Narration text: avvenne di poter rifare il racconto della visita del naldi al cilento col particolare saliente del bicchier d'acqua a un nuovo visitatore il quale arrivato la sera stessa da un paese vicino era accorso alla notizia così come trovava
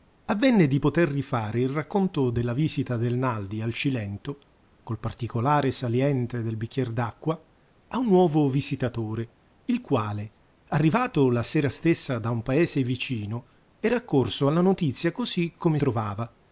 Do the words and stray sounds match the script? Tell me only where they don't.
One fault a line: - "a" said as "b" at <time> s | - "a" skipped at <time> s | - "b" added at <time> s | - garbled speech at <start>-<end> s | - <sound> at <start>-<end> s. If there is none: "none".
none